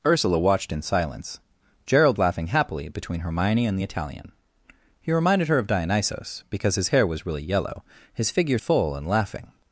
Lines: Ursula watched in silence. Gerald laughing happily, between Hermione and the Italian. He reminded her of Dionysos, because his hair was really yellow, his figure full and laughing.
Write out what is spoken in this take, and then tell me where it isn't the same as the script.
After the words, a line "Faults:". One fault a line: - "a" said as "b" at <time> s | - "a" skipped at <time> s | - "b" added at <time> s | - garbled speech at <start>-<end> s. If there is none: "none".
Ursula watched in silence. Gerald laughing happily, between Hermione and the Italian. He reminded her of Dionysos, because his hair was really yellow, his figure full and laughing.
Faults:
none